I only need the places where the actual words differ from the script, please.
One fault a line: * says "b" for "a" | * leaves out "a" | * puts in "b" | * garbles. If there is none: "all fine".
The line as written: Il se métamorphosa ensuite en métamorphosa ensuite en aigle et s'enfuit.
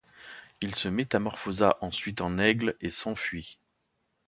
* leaves out "métamorphosa ensuite en"